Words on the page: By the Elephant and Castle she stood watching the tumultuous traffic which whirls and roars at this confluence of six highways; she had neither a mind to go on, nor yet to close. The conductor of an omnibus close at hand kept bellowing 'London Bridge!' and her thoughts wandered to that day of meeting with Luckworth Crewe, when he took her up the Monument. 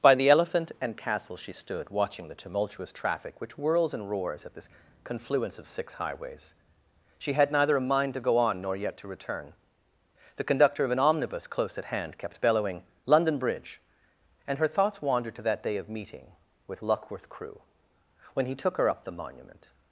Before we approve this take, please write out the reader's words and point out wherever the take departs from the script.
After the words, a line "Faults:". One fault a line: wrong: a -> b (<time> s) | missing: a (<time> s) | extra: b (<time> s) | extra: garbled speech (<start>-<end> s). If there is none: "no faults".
By the Elephant and Castle she stood watching the tumultuous traffic which whirls and roars at this confluence of six highways; she had neither a mind to go on, nor yet to return. The conductor of an omnibus close at hand kept bellowing 'London Bridge!' and her thoughts wandered to that day of meeting with Luckworth Crewe, when he took her up the Monument.
Faults:
wrong: close -> return (9.1 s)